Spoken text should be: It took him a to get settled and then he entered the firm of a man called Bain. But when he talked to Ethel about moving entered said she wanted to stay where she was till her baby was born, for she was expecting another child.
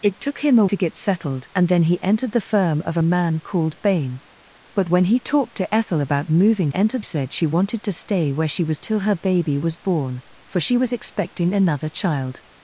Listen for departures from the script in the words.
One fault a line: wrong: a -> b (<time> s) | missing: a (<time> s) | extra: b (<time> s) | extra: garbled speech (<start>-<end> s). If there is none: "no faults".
no faults